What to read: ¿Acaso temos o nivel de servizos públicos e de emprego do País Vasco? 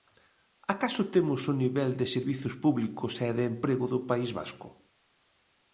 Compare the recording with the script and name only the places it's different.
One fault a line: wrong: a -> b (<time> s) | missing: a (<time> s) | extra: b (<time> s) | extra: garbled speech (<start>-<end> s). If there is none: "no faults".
no faults